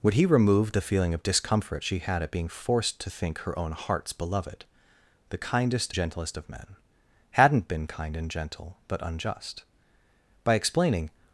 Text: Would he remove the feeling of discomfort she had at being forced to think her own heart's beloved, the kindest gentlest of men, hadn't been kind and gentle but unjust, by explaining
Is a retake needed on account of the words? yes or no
no